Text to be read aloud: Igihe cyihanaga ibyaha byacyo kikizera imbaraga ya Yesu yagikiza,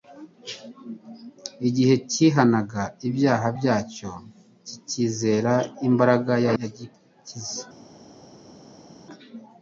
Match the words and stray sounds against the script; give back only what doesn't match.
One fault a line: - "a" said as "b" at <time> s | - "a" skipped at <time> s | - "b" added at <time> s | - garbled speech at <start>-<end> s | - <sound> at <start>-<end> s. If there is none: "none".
- "Yesu" skipped at 6.5 s